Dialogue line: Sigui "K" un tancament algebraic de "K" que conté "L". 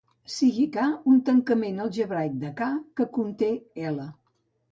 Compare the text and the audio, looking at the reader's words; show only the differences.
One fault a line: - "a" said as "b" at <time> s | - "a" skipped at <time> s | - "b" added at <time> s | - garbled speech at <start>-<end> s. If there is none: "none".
none